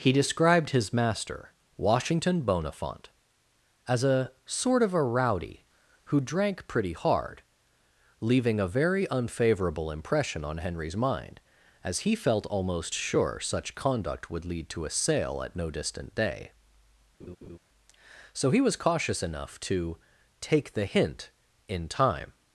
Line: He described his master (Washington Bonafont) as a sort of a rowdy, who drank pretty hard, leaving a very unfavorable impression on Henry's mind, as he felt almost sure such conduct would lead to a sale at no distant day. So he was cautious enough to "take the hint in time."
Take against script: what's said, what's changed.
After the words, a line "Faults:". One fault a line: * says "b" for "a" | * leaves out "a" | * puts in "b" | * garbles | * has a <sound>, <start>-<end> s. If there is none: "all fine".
He described his master (Washington Bonafont) as a sort of a rowdy, who drank pretty hard, leaving a very unfavorable impression on Henry's mind, as he felt almost sure such conduct would lead to a sale at no distant day. So he was cautious enough to "take the hint in time."
Faults:
* has a laugh, 17.2-17.6 s